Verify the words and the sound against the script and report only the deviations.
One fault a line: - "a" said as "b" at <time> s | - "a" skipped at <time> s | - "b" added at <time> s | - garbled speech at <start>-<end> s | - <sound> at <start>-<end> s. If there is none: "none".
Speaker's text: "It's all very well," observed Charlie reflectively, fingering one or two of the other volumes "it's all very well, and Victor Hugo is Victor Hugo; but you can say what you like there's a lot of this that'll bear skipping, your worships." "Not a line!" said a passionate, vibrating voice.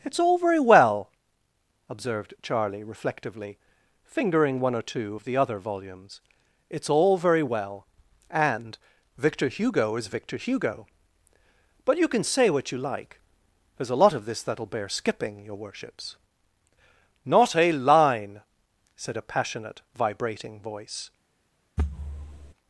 - thud at 21.8-22.5 s